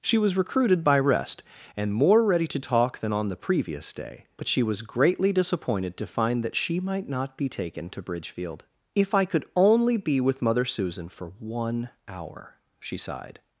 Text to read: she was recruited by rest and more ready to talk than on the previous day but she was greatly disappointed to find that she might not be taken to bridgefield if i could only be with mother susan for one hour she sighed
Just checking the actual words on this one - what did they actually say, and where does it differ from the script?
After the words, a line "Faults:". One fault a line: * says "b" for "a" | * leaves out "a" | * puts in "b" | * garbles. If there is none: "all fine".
she was recruited by rest and more ready to talk than on the previous day but she was greatly disappointed to find that she might not be taken to bridgefield if i could only be with mother susan for one hour she sighed
Faults:
all fine